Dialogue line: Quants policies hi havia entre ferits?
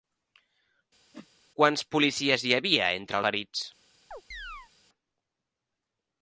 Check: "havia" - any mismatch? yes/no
no